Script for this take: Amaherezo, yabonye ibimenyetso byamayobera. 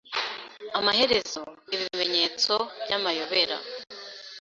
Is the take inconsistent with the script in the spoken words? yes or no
yes